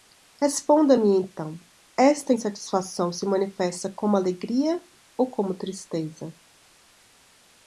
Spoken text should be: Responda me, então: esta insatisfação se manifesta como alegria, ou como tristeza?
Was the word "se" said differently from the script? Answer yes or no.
no